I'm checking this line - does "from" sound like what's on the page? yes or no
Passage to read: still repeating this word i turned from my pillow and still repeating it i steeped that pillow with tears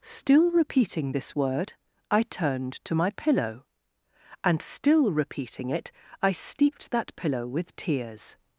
no